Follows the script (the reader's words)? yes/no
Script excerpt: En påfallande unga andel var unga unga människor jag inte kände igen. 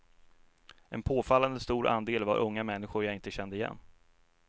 no